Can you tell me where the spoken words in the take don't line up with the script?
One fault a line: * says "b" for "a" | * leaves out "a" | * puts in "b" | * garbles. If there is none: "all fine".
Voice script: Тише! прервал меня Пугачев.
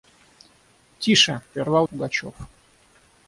* leaves out "меня"